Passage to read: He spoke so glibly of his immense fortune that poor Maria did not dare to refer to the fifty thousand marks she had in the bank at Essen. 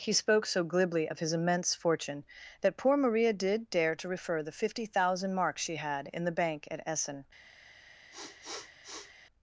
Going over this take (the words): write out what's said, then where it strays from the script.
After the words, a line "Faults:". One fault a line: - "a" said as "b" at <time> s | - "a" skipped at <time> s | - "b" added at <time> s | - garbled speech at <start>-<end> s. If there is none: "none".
He spoke so glibly of his immense fortune that poor Maria did dare to refer the fifty thousand marks she had in the bank at Essen.
Faults:
- "not" skipped at 3.7 s
- "to" skipped at 4.4 s